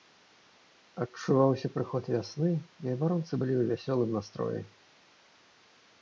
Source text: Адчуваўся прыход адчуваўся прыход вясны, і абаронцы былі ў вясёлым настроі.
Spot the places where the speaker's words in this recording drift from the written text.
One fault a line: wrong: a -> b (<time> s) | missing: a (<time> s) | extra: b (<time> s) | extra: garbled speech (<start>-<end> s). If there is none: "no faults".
missing: адчуваўся прыход (2.0 s)